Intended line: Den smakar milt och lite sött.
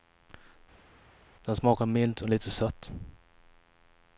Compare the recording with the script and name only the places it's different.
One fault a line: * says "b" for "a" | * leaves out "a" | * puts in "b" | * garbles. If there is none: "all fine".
all fine